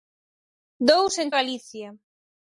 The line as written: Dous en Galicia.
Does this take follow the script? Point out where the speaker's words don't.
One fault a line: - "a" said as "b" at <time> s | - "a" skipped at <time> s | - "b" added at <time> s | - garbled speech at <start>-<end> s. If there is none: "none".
none